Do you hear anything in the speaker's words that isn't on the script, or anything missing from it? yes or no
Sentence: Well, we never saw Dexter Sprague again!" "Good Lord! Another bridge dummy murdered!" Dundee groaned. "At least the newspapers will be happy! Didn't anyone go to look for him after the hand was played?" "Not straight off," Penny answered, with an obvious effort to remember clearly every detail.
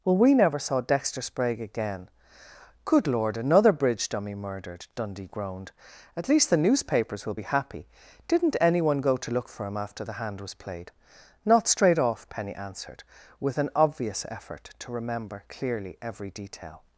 no